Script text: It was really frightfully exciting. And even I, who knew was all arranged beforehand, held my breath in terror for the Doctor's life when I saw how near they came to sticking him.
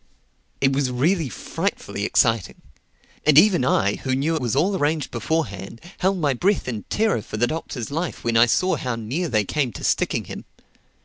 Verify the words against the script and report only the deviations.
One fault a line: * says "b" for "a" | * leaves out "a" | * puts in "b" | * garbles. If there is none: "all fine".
all fine